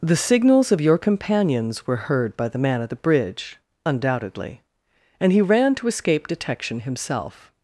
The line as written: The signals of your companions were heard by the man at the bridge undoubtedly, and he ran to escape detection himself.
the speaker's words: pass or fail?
pass